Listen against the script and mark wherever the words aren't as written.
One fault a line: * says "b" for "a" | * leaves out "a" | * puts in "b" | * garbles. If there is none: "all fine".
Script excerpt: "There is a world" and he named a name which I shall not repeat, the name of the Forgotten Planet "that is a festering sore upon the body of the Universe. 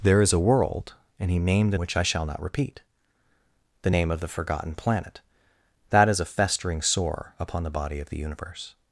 * leaves out "name"